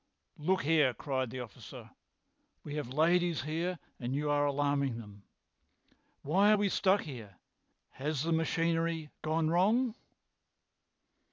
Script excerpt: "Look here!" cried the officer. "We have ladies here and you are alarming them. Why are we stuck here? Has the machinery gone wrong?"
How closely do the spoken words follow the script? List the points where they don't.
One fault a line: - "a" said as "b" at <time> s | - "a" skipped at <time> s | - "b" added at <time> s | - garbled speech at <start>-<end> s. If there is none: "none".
none